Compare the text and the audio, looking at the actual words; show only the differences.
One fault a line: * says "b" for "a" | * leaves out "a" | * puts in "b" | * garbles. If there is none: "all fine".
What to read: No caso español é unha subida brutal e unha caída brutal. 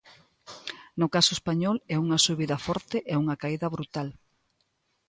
* says "forte" for "brutal"